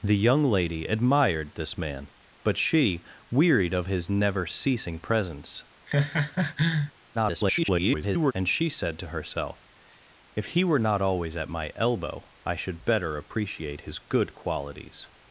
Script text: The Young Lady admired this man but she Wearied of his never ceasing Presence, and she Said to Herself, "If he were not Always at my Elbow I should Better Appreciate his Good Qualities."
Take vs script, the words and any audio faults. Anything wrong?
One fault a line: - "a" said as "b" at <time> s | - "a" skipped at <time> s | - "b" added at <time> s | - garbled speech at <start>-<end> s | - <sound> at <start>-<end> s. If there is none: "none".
- laugh at 5.9-6.9 s
- garbled speech at 7.1-8.3 s